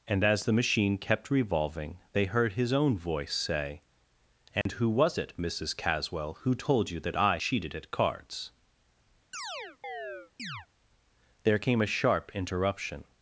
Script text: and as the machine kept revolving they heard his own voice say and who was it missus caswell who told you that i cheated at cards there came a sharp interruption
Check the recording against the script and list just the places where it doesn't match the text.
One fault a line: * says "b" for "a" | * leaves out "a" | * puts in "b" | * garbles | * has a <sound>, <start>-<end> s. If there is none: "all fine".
* has a dropout, 4.6-4.7 s
* has a chirp, 9.3-10.7 s